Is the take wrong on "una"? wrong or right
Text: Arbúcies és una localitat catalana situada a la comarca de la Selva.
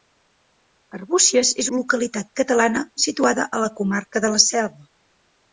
wrong